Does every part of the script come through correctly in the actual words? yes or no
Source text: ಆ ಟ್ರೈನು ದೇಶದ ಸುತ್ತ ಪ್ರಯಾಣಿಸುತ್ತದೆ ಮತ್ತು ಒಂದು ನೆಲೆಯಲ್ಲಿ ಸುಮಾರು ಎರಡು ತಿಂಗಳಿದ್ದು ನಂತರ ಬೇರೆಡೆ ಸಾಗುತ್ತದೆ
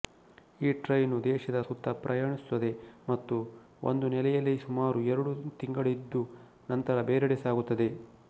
no